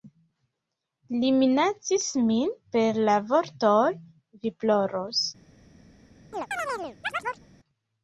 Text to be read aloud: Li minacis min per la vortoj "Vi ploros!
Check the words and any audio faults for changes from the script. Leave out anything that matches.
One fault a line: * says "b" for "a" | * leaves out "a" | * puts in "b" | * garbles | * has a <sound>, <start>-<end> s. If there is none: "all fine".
* has a chirp, 6.3-7.5 s